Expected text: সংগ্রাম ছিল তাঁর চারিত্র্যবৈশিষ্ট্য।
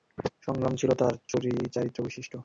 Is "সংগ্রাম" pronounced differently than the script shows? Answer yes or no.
no